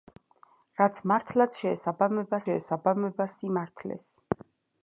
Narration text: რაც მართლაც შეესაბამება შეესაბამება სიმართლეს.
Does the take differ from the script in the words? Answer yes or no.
no